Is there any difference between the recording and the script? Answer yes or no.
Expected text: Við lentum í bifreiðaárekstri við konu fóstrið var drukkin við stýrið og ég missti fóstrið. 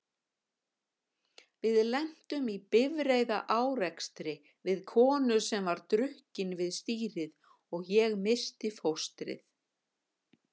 yes